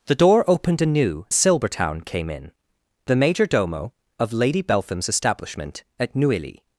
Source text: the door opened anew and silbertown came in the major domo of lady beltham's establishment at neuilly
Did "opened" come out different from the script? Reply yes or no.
no